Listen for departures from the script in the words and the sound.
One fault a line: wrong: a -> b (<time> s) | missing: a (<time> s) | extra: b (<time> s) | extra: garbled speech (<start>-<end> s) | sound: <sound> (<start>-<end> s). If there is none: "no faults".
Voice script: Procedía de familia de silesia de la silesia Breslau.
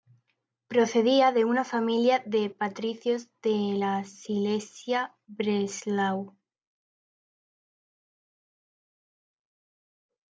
extra: una (1.4 s)
wrong: silesia -> patricios (2.5 s)